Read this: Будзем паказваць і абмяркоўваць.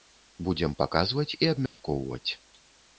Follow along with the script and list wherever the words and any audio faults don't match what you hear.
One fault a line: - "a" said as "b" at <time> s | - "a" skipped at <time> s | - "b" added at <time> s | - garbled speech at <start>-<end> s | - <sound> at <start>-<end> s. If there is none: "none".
- dropout at 1.7-1.8 s